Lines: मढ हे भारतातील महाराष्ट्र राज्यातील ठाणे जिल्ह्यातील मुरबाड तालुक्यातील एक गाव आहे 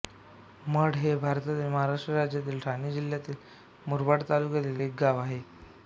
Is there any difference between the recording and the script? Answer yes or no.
no